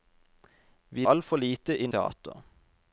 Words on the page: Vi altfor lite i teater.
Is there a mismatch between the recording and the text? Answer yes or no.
no